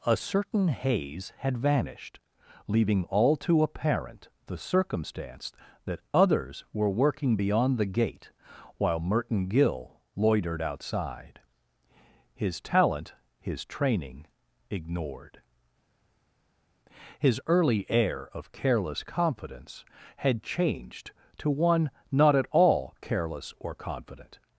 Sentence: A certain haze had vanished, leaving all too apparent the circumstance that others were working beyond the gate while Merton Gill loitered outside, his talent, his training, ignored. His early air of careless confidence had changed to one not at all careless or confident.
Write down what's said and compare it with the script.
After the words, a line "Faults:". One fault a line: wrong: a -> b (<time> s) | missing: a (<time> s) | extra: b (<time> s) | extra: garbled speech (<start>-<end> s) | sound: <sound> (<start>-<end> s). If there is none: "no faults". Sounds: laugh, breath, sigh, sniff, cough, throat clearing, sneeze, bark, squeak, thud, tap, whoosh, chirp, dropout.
A certain haze had vanished, leaving all too apparent the circumstance that others were working beyond the gate while Merton Gill loitered outside, his talent, his training, ignored. His early air of careless confidence had changed to one not at all careless or confident.
Faults:
no faults